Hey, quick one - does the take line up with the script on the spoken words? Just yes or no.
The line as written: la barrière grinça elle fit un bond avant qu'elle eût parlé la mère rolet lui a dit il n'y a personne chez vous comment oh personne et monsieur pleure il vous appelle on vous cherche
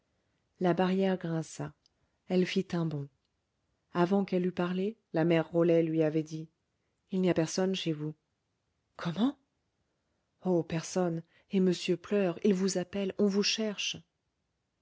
no